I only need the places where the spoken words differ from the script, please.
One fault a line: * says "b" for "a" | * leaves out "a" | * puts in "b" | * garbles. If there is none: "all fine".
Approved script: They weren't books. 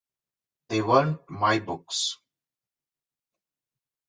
* puts in "my"